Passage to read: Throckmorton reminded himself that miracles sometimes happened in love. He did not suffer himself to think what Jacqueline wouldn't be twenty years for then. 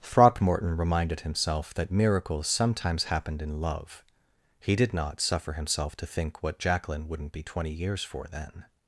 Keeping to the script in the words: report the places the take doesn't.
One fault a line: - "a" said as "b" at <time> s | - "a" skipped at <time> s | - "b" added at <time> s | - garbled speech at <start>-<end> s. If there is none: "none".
none